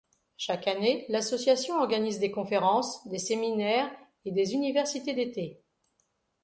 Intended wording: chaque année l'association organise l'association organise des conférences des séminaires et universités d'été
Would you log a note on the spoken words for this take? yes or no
yes